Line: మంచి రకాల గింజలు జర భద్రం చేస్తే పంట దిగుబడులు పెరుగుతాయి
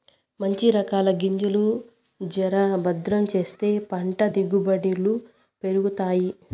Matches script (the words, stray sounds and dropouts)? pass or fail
pass